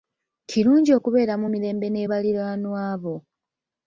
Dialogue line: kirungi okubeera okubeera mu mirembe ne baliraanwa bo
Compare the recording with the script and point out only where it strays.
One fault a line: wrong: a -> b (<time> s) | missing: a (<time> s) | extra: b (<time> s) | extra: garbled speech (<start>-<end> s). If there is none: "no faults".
missing: okubeera (1.3 s)